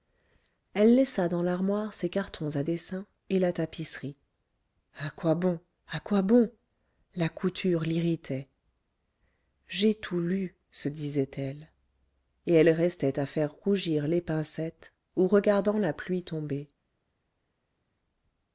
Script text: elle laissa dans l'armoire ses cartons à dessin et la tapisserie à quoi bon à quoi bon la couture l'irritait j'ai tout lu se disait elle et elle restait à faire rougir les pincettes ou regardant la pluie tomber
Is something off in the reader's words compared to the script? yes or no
no